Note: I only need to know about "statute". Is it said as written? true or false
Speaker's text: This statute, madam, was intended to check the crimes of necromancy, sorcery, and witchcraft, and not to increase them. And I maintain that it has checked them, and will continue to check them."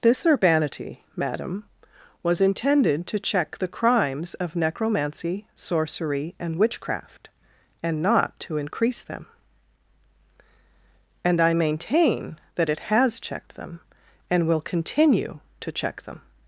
false